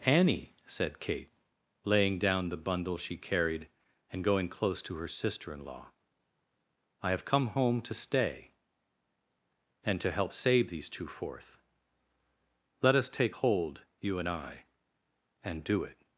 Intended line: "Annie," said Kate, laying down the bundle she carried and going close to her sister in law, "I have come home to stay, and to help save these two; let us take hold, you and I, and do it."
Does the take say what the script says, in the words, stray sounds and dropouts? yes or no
no